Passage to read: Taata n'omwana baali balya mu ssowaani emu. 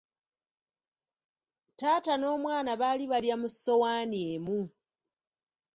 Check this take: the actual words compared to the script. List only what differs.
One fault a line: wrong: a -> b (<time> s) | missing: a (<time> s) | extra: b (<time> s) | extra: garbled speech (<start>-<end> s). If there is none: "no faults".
no faults